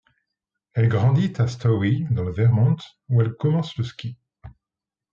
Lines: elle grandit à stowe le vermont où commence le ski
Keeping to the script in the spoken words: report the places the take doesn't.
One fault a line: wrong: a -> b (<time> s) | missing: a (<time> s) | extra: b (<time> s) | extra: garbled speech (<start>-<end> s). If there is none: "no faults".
extra: dans (2.1 s)
extra: elle (3.2 s)